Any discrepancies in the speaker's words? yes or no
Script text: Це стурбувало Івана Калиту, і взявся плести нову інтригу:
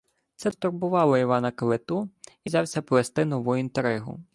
no